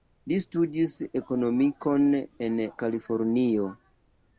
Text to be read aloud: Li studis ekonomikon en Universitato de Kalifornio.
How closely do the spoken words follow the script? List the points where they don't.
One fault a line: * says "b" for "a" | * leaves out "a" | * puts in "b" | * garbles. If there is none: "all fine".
* leaves out "Universitato de"